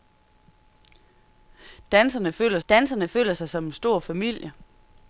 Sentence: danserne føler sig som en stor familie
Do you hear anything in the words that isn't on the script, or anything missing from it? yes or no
yes